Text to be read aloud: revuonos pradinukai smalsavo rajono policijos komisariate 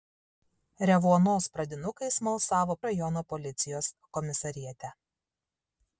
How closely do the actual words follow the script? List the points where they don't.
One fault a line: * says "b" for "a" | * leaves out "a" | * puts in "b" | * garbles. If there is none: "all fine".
all fine